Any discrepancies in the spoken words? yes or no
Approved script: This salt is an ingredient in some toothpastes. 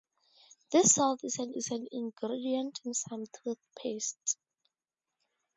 yes